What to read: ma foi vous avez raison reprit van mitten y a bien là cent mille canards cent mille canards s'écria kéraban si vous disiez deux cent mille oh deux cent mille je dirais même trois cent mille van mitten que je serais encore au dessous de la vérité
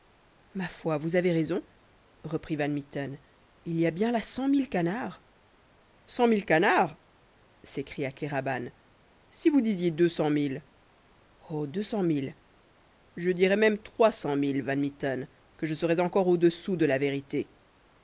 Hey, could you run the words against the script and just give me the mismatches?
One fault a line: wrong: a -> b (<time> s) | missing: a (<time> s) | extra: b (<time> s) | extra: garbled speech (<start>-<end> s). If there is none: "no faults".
extra: il (3.6 s)